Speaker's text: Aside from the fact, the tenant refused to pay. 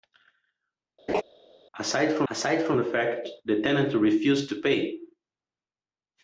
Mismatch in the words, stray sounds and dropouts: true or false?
true